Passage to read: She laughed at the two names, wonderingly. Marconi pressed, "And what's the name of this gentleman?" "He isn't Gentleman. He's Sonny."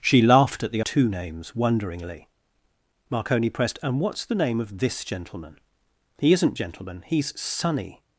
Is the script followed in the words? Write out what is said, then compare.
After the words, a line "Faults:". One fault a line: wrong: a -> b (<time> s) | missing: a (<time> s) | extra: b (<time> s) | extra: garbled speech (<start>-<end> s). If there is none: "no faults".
She laughed at the two names, wonderingly. Marconi pressed, "And what's the name of this gentleman?" "He isn't Gentleman. He's Sonny."
Faults:
no faults